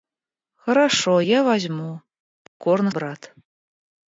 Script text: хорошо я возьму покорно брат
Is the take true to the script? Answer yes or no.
yes